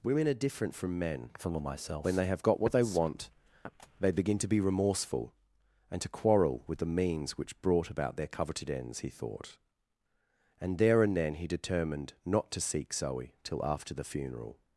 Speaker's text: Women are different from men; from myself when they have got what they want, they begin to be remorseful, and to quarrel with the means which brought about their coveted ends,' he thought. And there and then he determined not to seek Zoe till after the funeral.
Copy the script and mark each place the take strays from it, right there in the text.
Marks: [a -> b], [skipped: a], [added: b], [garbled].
Women are different from men; from myself when they have got what they want, they begin to be remorseful, and to quarrel with the means which brought about their coveted ends,' he thought. And there and then he determined not to seek Zoe till after the funeral.